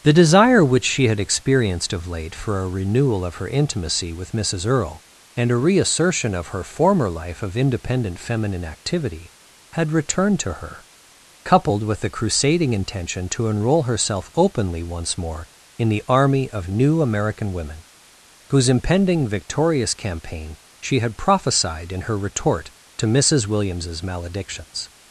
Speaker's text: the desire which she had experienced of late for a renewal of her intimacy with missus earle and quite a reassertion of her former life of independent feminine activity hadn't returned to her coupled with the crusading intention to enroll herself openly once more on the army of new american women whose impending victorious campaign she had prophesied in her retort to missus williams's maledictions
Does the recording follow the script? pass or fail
fail